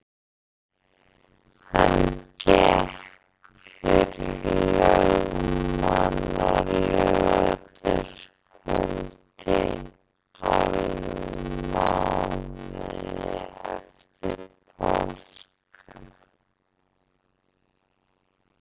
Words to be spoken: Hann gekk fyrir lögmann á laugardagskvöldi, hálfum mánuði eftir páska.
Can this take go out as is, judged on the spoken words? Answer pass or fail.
pass